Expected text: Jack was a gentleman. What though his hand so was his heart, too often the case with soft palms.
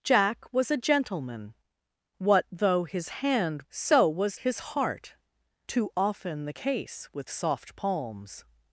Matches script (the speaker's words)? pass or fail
pass